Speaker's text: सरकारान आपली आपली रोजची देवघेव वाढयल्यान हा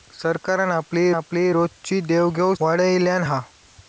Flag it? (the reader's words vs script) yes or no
no